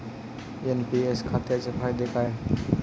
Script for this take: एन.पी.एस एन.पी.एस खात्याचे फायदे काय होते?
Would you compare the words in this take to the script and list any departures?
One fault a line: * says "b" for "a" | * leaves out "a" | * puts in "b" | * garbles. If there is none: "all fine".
* leaves out "एन.पी.एस"
* says "आहेत" for "होते"